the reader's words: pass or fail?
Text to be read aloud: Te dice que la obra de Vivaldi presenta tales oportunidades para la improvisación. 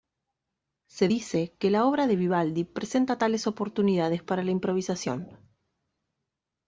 fail